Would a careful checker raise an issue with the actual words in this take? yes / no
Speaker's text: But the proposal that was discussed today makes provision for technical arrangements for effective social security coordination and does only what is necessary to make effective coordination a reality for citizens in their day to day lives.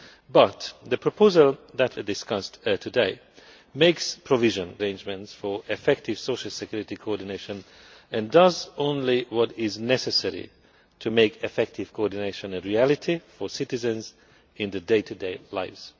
yes